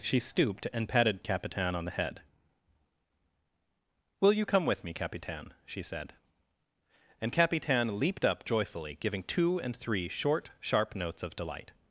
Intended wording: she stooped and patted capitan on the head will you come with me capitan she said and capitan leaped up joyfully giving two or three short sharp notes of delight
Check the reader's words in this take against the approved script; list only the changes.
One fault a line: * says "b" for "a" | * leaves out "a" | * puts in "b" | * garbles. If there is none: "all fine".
* says "and" for "or"